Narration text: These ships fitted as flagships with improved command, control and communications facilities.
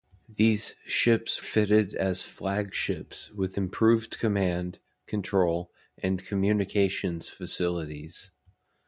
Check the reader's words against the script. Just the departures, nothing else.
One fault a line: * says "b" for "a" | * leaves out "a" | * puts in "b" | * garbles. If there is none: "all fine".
all fine